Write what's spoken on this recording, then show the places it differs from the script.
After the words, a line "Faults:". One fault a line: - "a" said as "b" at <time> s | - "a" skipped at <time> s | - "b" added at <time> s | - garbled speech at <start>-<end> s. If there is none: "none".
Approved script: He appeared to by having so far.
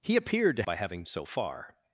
He appeared to by having so far.
Faults:
none